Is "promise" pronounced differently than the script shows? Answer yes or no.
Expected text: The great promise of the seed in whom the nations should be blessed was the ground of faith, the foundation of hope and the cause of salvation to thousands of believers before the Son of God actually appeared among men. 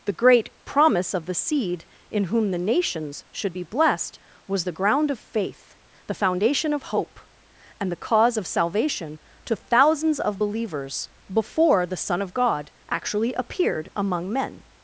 no